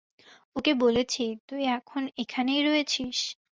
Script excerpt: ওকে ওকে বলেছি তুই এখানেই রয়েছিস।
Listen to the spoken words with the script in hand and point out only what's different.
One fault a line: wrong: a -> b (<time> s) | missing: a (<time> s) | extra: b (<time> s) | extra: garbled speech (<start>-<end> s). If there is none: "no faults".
missing: ওকে (0.7 s)
extra: এখন (1.8 s)